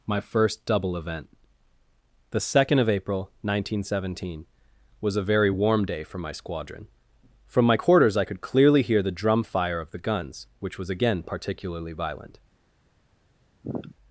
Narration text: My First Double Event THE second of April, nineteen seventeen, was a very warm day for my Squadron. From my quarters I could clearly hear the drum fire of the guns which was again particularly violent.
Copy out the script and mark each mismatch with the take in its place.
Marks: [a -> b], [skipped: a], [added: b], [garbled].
My First Double Event THE second of April, nineteen seventeen, was a very warm day for my Squadron. From my quarters I could clearly hear the drum fire of the guns which was again particularly violent.